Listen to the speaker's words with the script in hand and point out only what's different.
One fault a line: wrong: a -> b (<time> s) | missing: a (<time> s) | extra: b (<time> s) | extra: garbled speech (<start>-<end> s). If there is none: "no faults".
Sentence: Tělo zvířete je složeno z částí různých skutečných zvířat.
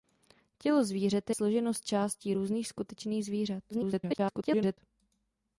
missing: je (1.3 s)
extra: garbled speech (3.7-4.8 s)